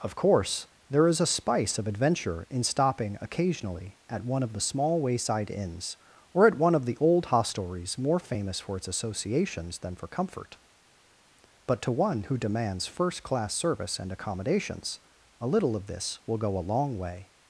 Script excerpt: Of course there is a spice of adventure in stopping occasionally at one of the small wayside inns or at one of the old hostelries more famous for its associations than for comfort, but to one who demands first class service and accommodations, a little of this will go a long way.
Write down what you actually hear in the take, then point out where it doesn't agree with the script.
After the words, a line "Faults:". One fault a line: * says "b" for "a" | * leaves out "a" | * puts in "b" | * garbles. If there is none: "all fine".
Of course there is a spice of adventure in stopping occasionally at one of the small wayside inns or at one of the old hostelries more famous for its associations than for comfort, but to one who demands first class service and accommodations, a little of this will go a long way.
Faults:
all fine